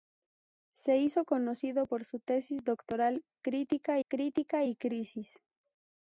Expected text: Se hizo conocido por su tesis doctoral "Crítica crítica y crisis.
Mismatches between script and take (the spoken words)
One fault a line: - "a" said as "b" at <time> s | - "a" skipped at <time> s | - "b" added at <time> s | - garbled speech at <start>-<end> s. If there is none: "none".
none